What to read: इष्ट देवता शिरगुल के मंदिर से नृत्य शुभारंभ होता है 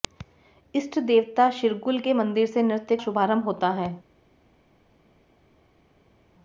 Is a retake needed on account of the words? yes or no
no